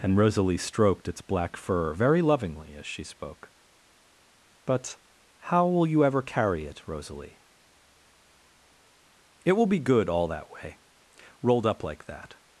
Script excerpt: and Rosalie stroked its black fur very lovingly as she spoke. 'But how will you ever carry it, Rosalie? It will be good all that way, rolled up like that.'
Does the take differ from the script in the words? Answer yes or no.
no